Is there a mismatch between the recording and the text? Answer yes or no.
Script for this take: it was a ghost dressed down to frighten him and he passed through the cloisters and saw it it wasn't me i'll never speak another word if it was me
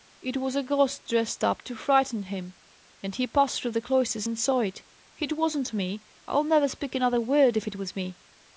yes